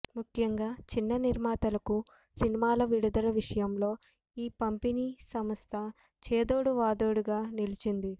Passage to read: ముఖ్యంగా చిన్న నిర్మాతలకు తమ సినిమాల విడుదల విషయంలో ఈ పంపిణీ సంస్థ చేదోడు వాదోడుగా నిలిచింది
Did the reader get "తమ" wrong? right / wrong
wrong